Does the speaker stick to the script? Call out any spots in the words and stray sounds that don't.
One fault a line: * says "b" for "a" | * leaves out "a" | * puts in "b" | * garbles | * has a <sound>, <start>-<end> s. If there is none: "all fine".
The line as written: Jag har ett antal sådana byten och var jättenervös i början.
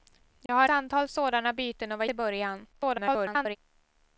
* has a dropout, 0.5-0.5 s
* leaves out "ett"
* leaves out "jättenervös"
* garbles